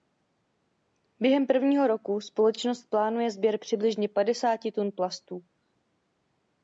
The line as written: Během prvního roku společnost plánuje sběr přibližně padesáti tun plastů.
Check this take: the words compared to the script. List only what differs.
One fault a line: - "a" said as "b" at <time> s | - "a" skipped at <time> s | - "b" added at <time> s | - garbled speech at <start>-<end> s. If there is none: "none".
none